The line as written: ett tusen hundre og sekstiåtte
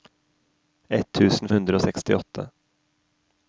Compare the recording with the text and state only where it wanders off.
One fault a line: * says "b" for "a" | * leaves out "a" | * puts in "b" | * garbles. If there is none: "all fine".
all fine